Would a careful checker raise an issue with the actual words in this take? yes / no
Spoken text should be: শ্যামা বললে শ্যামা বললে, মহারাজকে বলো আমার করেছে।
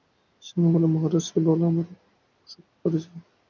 yes